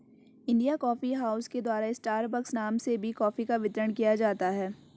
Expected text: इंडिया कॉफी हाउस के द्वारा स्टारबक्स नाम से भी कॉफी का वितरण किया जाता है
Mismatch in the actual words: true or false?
false